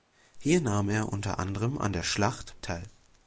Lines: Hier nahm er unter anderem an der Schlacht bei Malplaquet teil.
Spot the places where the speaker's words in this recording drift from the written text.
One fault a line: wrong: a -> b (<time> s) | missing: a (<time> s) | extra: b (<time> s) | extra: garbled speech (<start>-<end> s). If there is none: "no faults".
missing: bei Malplaquet (2.6 s)